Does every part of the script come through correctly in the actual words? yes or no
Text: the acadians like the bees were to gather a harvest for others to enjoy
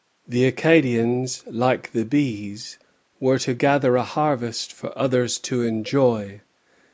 yes